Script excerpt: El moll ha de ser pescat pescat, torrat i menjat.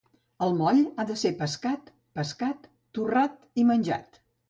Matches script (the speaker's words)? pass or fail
pass